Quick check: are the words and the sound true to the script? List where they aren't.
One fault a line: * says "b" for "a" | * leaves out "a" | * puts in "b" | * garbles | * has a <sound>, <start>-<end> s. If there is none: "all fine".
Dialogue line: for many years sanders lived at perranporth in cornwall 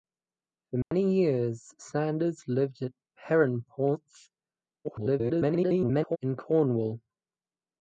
* has a dropout, 0.8-0.9 s
* garbles